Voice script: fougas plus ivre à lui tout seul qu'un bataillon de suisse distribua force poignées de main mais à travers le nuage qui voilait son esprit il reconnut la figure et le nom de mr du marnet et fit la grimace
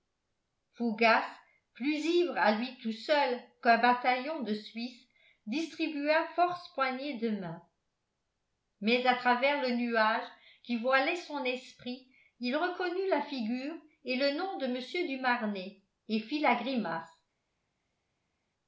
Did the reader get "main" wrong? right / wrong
right